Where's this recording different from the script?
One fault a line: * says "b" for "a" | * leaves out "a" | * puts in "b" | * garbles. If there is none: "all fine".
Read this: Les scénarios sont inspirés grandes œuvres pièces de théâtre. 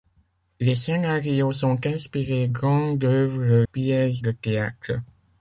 all fine